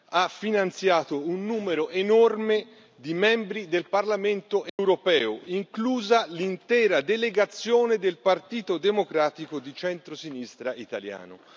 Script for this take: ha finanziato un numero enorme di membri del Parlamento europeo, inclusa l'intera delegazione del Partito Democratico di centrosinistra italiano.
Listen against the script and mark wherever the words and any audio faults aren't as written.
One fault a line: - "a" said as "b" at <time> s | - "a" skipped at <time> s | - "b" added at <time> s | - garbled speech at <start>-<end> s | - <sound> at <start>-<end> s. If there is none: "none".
- dropout at 4.7-4.8 s